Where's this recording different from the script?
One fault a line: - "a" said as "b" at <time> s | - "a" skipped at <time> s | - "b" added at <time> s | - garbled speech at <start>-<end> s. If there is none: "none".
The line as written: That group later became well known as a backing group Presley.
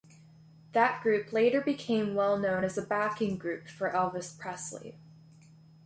- "for Elvis" added at 3.7 s